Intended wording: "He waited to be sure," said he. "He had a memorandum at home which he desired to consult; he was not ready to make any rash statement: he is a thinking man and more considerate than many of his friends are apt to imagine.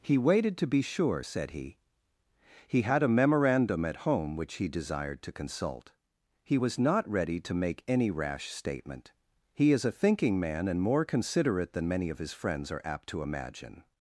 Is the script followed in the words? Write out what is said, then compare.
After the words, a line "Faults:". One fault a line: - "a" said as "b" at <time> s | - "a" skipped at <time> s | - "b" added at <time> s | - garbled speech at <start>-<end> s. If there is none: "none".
"He waited to be sure," said he. "He had a memorandum at home which he desired to consult; he was not ready to make any rash statement: he is a thinking man and more considerate than many of his friends are apt to imagine.
Faults:
none